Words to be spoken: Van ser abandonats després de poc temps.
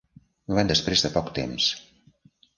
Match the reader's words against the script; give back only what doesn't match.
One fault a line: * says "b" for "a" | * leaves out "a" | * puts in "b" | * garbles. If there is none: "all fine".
* leaves out "ser abandonats"